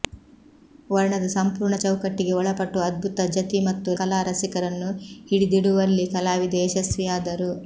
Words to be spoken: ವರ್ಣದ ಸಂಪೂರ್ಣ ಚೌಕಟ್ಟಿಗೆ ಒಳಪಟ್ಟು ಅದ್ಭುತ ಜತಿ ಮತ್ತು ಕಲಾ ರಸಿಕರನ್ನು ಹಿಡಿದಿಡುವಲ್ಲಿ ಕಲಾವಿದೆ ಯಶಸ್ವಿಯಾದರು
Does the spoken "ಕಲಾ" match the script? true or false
true